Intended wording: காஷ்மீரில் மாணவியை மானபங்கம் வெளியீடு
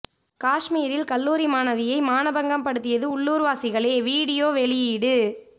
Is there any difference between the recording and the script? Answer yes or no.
yes